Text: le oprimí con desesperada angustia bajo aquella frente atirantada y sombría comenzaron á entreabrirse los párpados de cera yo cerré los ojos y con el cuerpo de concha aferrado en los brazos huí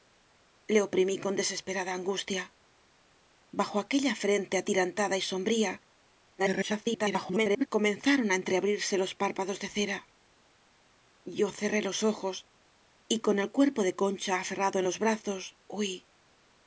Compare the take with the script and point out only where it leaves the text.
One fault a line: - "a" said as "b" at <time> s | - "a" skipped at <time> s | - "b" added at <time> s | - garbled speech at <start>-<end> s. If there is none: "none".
- garbled speech at 6.4-7.7 s